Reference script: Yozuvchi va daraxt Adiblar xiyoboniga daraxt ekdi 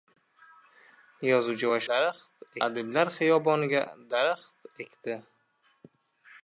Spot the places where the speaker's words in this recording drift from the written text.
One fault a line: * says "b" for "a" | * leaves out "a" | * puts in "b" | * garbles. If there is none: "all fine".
all fine